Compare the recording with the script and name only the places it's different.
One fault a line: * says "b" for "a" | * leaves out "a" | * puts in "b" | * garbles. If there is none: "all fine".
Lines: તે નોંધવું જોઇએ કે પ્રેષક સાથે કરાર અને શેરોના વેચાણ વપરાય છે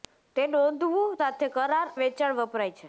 * leaves out "જોઇએ કે પ્રેષક"
* leaves out "અને શેરોના"